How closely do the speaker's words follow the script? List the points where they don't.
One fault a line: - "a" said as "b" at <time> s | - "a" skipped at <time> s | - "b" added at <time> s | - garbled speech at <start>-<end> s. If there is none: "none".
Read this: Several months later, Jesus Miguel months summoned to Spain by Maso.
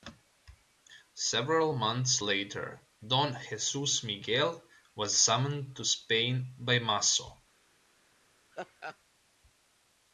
- "Don" added at 3.0 s
- "months" said as "was" at 4.9 s